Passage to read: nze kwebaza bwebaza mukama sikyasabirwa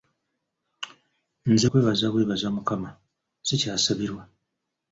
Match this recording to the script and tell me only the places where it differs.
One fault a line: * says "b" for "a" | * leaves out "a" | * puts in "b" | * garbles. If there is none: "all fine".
all fine